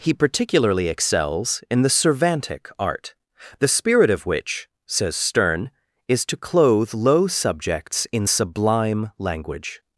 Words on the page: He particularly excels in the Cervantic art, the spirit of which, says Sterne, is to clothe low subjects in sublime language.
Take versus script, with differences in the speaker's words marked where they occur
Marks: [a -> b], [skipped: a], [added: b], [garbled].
He particularly excels in the Cervantic art, the spirit of which, says Sterne, is to clothe low subjects in sublime language.